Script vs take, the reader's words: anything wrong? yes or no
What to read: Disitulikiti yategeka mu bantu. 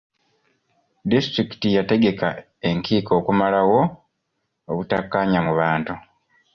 yes